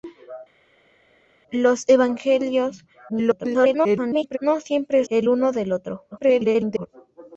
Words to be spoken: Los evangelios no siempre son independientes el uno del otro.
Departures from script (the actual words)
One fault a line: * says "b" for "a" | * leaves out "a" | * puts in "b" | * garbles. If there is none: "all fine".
* garbles
* leaves out "son independientes"
* garbles